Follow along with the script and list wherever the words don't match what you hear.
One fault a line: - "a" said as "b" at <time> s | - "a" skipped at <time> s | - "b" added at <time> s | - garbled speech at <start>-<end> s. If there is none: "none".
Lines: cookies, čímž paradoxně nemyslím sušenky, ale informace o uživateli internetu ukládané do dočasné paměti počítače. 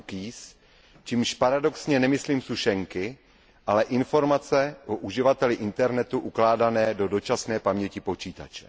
none